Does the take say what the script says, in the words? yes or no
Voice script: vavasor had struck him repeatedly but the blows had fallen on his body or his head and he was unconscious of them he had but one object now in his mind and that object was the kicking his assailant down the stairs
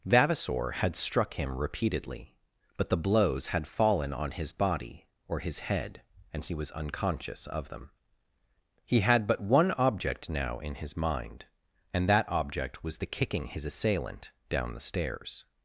yes